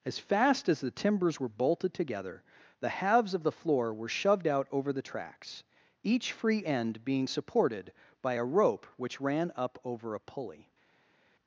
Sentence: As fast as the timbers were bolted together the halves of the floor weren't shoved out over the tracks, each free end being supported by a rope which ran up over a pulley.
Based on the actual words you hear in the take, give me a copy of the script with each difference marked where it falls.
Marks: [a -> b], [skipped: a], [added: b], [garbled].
As fast as the timbers were bolted together the halves of the floor [weren't -> were] shoved out over the tracks, each free end being supported by a rope which ran up over a pulley.